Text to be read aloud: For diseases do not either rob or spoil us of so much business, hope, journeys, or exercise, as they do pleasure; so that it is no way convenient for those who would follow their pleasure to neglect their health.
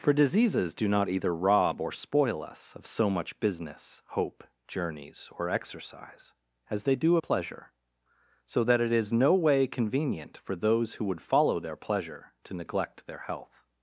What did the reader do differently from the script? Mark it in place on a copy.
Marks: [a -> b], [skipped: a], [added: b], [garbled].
For diseases do not either rob or spoil us of so much business, hope, journeys, or exercise, as they do pleasure; so that it is no way convenient for those who would follow their pleasure to neglect their health.